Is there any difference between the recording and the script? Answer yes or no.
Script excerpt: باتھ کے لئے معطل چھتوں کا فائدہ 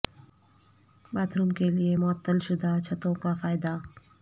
yes